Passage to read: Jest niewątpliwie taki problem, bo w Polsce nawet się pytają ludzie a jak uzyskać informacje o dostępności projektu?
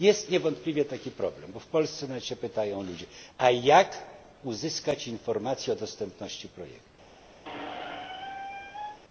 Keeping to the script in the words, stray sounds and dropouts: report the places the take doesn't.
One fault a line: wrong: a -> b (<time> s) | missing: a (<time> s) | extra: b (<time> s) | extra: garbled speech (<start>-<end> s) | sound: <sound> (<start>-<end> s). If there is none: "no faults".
sound: squeak (7.4-9.0 s)